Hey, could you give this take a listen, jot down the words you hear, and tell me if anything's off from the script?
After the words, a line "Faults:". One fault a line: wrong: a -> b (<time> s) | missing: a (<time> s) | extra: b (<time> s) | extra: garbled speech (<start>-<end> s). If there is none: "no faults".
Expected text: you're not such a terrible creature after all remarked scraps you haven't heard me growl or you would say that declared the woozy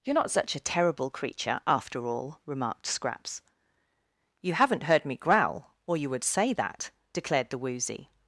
you're not such a terrible creature after all remarked scraps you haven't heard me growl or you would say that declared the woozy
Faults:
no faults